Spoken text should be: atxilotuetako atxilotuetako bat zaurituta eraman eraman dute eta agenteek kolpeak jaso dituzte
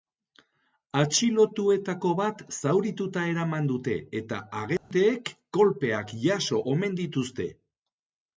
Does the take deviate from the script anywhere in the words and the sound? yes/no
yes